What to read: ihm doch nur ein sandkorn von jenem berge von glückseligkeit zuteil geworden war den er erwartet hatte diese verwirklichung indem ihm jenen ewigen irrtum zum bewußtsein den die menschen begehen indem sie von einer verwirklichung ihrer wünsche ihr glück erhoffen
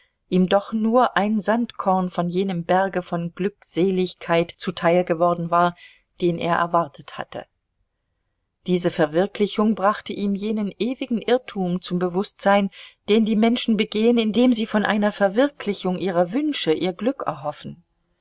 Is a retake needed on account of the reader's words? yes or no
yes